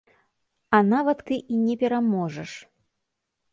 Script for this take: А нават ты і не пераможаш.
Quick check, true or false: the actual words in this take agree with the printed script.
true